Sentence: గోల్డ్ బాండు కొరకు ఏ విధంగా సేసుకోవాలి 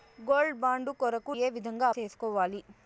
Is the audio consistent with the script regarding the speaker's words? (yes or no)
yes